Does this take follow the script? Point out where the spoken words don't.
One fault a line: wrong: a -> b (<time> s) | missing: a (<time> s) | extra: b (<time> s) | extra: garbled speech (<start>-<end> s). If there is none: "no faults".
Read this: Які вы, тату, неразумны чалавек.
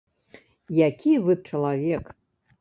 missing: тату неразумны (1.4 s)